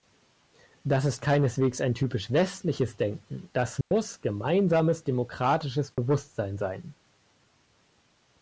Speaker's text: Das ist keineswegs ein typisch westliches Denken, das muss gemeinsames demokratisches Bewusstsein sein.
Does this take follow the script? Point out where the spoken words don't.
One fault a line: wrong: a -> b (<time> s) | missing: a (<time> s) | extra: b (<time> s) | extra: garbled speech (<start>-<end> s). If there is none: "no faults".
no faults